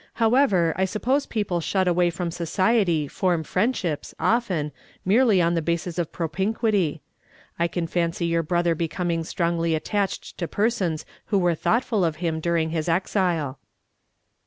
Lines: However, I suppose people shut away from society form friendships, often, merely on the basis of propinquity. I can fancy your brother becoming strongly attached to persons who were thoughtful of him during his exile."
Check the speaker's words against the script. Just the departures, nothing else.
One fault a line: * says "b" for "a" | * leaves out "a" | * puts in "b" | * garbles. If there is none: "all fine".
all fine